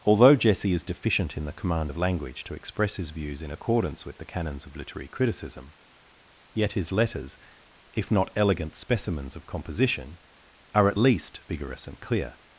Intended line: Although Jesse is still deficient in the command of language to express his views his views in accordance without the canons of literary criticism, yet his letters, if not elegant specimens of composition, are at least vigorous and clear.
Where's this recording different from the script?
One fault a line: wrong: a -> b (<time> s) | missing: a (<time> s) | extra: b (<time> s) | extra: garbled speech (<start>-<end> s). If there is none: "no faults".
missing: still (0.8 s)
missing: his views (3.4 s)
wrong: without -> with (4.0 s)